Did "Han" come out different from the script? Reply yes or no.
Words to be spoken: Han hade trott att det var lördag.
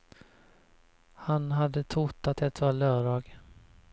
no